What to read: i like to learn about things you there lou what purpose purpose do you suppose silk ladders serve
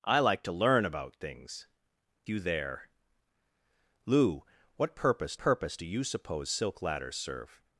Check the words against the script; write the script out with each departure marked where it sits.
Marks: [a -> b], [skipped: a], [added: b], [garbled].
i like to learn about things you there lou what purpose purpose do you suppose silk ladders serve